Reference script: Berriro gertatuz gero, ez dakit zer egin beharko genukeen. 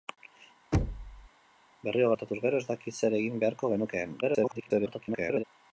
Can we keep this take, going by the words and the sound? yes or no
no